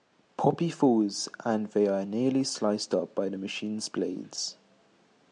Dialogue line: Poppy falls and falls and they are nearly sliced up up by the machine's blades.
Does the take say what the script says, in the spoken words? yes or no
no